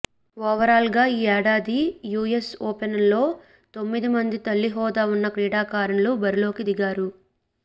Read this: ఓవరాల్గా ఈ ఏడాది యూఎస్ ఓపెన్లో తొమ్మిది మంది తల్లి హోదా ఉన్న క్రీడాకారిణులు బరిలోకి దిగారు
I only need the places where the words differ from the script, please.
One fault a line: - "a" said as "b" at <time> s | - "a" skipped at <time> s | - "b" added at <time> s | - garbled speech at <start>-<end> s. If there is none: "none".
none